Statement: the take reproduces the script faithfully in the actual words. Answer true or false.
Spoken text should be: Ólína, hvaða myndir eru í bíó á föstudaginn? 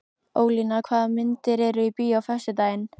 true